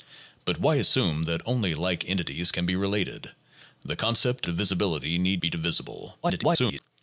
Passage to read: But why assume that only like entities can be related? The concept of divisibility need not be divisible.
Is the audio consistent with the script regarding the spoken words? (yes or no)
no